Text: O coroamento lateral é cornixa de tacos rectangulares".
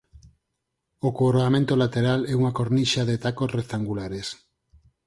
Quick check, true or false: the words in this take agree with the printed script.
false